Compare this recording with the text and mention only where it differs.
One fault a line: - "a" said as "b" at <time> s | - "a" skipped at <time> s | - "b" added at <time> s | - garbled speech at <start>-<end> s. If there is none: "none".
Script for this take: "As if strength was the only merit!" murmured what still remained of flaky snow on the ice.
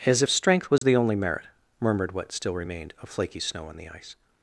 none